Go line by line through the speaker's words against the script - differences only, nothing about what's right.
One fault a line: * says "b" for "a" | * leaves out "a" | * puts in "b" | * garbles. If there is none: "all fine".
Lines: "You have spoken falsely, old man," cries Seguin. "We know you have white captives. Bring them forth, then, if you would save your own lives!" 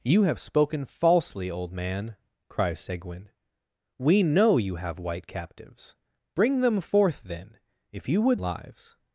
* leaves out "save your own"